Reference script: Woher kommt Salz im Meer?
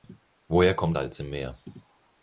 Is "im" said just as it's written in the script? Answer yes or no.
yes